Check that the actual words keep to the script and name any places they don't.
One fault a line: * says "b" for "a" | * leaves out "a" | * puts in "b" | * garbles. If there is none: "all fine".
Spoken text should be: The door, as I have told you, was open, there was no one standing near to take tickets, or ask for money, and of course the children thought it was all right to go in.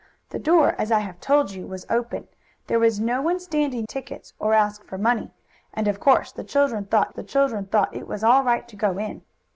* leaves out "near to take"
* puts in "the children thought"